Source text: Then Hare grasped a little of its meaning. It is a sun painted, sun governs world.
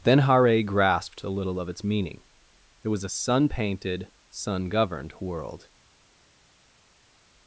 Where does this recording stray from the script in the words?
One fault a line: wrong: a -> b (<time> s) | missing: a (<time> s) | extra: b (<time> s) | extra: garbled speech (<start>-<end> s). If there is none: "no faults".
wrong: is -> was (2.9 s)
wrong: governs -> governed (4.7 s)